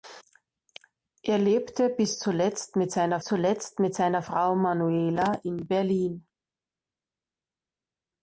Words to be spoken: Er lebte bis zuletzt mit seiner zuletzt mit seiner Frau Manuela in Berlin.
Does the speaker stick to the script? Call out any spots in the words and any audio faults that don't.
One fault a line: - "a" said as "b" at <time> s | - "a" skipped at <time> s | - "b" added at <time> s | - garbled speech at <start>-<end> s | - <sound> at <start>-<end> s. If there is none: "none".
none